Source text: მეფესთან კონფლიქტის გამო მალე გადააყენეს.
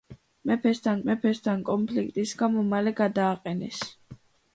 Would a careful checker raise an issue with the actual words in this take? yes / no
yes